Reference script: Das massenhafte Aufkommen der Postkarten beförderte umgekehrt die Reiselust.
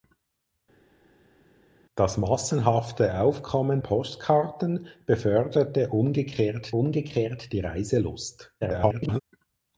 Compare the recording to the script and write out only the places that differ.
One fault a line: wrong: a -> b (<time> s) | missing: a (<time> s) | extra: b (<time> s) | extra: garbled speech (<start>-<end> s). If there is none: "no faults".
missing: der (3.8 s)
extra: umgekehrt (6.7 s)
extra: garbled speech (8.6-9.2 s)